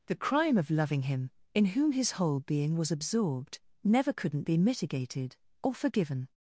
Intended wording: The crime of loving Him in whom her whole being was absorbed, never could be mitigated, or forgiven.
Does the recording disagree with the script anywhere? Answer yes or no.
yes